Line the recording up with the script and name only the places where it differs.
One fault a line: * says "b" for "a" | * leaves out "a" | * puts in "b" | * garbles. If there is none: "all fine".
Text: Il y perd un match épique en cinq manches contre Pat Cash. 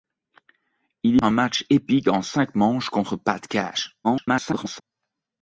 * leaves out "perd"
* garbles